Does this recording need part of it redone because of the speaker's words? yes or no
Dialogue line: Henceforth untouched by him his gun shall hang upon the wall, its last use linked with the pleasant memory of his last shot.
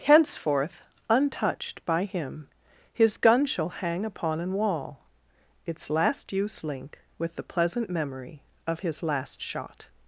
yes